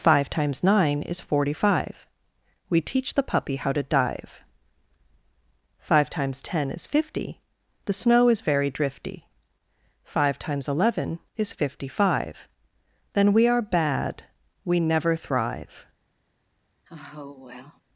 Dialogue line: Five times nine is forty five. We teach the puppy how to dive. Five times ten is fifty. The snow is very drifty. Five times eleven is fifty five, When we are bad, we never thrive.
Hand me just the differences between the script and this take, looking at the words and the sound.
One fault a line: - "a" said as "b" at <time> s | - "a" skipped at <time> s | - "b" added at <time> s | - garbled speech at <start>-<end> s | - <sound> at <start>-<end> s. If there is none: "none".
- "When" said as "Then" at 13.1 s
- sigh at 16.8-17.8 s